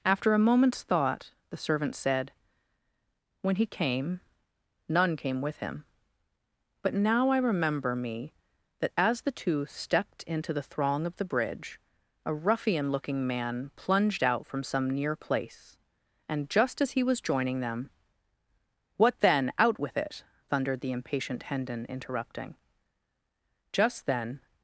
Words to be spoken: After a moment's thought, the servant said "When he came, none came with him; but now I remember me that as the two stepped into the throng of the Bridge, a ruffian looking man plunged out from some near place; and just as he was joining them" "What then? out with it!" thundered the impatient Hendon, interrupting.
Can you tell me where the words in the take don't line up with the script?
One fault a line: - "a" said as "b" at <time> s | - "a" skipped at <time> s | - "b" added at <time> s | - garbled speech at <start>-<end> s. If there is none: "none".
- "Just then" added at 23.7 s